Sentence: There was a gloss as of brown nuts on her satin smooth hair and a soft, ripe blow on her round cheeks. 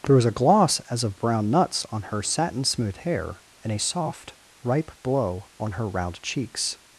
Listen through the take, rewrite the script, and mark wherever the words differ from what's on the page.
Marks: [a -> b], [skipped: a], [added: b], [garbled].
There was a gloss as of brown nuts on her satin smooth hair and a soft, ripe blow on her round cheeks.